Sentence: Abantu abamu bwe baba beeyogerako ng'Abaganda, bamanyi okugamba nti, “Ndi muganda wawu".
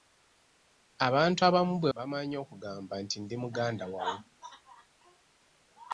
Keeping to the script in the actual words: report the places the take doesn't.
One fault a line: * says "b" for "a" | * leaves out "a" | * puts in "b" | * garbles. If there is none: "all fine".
* leaves out "baba beeyogerako ng'Abaganda"